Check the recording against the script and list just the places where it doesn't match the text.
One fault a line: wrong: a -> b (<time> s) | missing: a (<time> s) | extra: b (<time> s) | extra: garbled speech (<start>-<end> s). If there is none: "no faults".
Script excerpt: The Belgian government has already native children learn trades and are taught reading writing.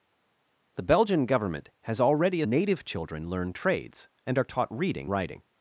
no faults